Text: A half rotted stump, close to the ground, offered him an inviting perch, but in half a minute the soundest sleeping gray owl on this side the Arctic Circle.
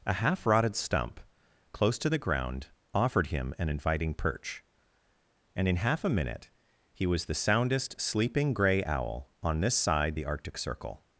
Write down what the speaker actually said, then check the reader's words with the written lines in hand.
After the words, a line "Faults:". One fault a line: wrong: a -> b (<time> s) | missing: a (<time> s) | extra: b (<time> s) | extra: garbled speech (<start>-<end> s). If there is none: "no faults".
A half rotted stump, close to the ground, offered him an inviting perch, and in half a minute he was the soundest sleeping gray owl on this side the Arctic Circle.
Faults:
wrong: but -> and (5.6 s)
extra: he was (6.9 s)